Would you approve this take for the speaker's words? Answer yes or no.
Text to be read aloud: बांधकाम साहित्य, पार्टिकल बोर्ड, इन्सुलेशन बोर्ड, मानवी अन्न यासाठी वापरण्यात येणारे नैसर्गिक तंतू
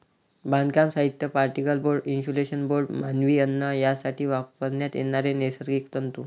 yes